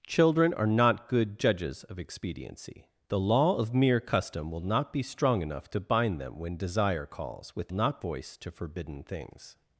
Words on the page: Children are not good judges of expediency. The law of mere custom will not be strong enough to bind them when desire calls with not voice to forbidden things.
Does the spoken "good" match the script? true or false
true